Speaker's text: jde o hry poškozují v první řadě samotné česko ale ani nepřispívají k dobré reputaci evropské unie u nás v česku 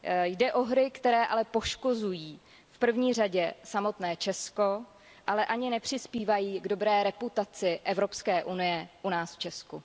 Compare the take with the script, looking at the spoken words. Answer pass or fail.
fail